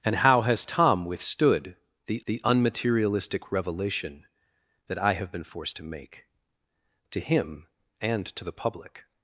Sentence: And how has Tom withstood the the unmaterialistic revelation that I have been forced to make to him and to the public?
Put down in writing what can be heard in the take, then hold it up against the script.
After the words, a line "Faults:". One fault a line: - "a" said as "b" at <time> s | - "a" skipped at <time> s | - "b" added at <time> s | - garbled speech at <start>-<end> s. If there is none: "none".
And how has Tom withstood the the unmaterialistic revelation that I have been forced to make to him and to the public?
Faults:
none